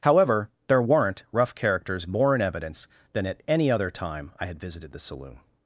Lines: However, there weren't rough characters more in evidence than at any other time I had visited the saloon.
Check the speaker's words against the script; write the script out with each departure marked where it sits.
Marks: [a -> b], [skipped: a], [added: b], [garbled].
However, there weren't rough characters more in evidence than at any other time I had visited the saloon.